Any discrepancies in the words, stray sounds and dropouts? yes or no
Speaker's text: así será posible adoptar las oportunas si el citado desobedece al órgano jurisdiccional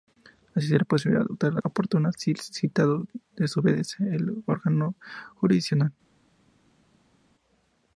no